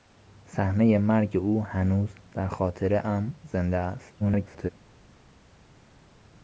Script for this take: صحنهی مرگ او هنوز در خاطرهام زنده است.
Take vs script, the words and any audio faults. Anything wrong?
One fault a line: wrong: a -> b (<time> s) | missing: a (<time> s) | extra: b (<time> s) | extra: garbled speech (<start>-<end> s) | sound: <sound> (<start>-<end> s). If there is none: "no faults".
extra: garbled speech (4.2-4.7 s)